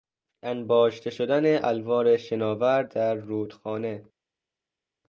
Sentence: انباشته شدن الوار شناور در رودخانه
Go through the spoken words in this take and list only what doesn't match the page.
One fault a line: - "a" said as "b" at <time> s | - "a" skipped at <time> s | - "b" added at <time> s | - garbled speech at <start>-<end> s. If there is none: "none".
none